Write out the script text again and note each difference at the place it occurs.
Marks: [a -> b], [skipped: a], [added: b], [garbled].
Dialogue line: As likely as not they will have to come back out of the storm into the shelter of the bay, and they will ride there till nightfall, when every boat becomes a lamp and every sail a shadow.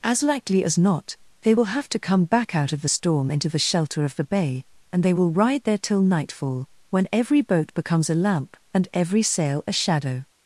As likely as not they will have to come back out of the storm into the shelter of the bay, and they will ride there till nightfall, when every boat becomes a lamp and every sail a shadow.